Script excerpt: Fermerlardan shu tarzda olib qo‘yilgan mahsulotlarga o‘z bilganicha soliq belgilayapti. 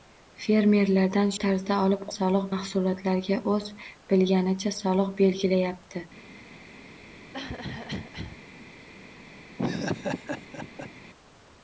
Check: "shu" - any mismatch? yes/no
yes